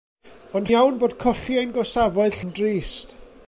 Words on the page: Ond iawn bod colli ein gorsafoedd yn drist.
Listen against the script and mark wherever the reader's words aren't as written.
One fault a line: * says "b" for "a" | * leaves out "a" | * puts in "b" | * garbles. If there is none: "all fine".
all fine